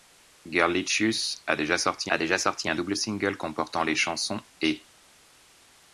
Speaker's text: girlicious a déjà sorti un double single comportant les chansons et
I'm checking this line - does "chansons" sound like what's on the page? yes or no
yes